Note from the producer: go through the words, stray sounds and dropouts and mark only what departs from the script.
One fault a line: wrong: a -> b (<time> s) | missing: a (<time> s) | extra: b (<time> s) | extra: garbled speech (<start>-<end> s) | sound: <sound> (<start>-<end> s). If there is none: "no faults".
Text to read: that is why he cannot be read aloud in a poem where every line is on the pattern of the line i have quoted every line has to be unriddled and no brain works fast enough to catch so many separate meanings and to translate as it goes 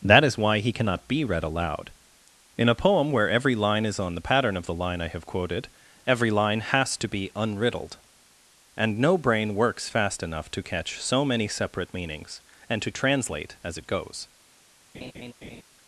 sound: laugh (14.9-15.6 s)